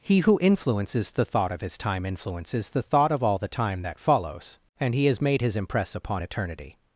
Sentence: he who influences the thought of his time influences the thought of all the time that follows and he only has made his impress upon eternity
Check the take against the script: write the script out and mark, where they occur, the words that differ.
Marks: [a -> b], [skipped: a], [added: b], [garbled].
he who influences the thought of his time influences the thought of all the time that follows and he [skipped: only] has made his impress upon eternity